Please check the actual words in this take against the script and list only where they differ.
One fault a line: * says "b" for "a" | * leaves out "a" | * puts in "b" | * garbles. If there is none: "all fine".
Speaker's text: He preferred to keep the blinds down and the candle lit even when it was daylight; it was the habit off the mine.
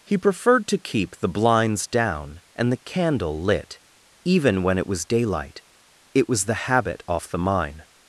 all fine